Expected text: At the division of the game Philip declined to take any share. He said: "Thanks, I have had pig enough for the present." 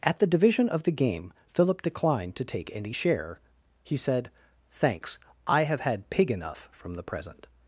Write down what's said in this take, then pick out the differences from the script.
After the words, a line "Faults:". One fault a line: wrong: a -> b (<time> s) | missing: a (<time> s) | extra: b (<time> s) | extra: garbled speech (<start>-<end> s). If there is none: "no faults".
At the division of the game Philip declined to take any share. He said: "Thanks, I have had pig enough from the present."
Faults:
wrong: for -> from (6.7 s)